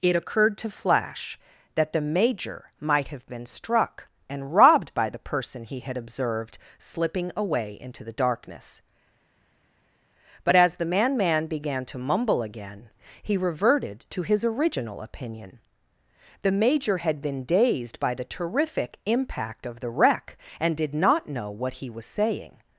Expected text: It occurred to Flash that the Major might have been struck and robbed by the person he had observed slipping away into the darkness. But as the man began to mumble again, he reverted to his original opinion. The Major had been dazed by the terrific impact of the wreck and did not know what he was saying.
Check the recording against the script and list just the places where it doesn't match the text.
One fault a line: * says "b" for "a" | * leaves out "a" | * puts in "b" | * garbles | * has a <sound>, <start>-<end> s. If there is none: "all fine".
* puts in "man"